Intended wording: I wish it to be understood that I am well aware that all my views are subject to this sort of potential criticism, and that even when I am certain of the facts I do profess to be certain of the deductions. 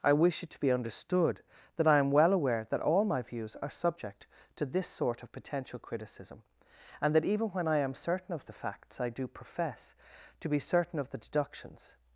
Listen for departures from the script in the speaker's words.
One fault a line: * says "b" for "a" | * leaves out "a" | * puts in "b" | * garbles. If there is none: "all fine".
all fine